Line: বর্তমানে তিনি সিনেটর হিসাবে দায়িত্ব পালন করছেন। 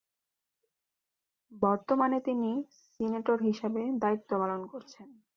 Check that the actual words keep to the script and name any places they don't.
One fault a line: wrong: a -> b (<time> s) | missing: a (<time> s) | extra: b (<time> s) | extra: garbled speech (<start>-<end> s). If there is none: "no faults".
no faults